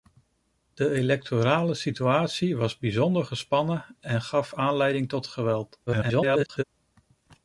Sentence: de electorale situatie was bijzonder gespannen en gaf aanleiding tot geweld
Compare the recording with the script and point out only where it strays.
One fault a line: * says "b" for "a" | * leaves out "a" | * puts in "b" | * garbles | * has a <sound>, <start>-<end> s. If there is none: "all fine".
* garbles